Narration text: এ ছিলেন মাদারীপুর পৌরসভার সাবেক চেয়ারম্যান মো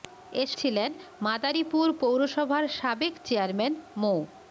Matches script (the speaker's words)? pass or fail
pass